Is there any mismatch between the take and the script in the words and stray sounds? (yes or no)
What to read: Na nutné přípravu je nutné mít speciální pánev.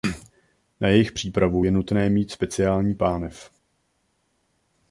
yes